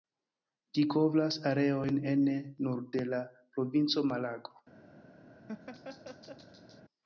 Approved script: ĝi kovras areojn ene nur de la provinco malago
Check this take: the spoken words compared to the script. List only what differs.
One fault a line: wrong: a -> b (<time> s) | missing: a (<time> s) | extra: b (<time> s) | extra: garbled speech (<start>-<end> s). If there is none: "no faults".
no faults